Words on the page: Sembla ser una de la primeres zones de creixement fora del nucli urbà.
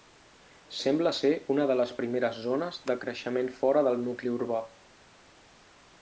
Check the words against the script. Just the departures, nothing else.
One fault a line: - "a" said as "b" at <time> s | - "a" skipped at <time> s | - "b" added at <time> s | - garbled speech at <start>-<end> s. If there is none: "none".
- "la" said as "les" at 1.8 s